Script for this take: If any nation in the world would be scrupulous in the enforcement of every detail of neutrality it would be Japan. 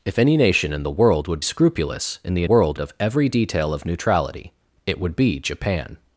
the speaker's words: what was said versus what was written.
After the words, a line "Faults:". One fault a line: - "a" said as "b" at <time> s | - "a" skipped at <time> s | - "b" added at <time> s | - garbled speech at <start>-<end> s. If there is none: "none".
If any nation in the world would scrupulous in the world of every detail of neutrality it would be Japan.
Faults:
- "be" skipped at 1.4 s
- "enforcement" said as "world" at 2.5 s